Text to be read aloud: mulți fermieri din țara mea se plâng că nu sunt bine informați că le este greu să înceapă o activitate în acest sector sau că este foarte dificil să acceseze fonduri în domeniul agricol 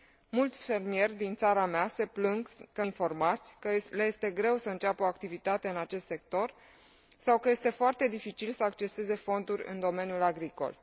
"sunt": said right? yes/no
no